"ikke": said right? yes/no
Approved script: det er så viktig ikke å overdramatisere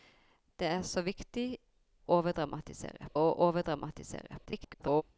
no